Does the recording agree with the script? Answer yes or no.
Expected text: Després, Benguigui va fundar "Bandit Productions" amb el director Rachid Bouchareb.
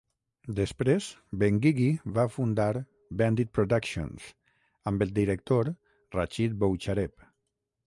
yes